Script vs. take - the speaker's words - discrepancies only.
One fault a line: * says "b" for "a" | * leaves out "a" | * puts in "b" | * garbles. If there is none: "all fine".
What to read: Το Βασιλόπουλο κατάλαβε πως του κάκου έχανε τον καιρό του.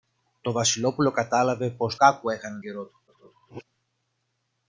* leaves out "του"
* leaves out "τον"
* garbles